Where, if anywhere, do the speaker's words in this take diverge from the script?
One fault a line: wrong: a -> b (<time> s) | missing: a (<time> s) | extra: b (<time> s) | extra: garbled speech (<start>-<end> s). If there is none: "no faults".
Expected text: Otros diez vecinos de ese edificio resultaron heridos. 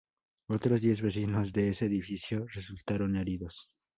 no faults